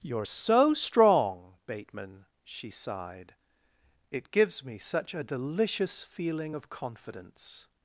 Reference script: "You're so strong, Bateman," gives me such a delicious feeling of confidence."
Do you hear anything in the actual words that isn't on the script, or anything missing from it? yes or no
yes